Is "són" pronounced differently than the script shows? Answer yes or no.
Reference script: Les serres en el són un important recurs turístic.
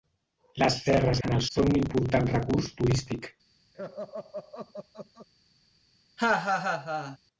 no